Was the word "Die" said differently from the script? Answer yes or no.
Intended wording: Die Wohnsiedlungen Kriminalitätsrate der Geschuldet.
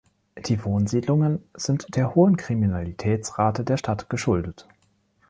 no